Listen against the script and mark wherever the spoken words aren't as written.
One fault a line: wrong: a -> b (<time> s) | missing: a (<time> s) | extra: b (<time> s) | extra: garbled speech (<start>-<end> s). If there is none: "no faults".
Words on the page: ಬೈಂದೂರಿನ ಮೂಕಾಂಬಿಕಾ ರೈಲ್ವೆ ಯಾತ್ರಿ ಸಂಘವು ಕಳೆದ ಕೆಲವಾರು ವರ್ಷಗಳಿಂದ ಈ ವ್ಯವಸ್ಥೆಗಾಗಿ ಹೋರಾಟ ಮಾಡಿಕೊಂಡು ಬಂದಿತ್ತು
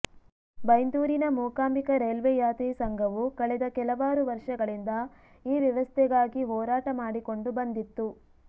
no faults